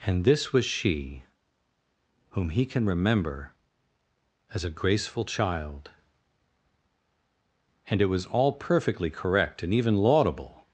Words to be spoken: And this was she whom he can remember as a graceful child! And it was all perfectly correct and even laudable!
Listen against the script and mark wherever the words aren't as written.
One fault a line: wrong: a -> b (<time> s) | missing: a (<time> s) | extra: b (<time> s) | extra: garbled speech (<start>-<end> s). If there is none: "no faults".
no faults